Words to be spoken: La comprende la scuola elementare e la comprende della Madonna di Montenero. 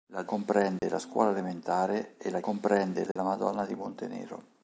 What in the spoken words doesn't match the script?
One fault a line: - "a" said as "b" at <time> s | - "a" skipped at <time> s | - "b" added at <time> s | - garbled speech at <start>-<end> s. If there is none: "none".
none